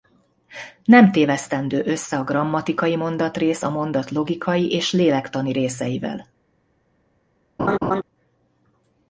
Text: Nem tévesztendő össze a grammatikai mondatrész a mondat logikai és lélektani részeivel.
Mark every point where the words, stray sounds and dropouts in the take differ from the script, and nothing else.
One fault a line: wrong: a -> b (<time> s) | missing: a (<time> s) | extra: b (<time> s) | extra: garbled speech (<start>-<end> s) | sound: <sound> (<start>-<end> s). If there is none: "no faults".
sound: laugh (7.6-8.0 s)